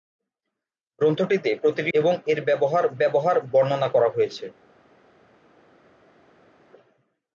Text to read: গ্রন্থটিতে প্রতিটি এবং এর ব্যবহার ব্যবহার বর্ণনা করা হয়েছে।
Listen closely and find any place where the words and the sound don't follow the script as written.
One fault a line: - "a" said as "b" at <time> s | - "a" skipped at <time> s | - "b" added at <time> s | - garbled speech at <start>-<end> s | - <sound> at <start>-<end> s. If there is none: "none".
none